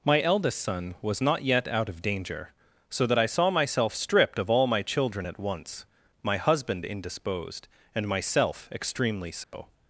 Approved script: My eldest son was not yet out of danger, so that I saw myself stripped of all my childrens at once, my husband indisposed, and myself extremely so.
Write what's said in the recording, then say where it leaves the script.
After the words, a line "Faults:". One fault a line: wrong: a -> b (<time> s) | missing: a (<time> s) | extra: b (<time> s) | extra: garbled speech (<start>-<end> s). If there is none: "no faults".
My eldest son was not yet out of danger, so that I saw myself stripped of all my children at once, my husband indisposed, and myself extremely so.
Faults:
wrong: childrens -> children (4.8 s)